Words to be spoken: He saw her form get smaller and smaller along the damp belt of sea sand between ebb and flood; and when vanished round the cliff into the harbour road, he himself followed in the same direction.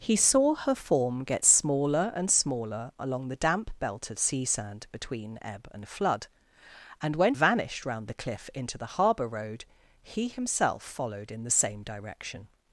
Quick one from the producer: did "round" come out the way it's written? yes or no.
yes